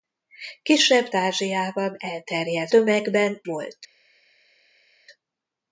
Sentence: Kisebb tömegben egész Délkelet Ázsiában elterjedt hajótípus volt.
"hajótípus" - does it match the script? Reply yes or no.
no